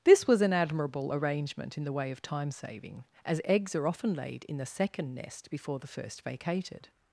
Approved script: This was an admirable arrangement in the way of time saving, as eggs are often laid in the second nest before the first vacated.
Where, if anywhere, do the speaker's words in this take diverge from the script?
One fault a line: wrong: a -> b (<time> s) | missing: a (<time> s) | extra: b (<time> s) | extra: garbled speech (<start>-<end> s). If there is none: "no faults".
no faults